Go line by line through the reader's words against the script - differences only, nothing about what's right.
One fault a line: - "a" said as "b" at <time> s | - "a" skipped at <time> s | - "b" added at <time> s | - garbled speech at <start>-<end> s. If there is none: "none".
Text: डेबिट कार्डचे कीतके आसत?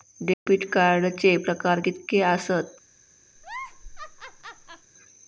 - "प्रकार" added at 1.4 s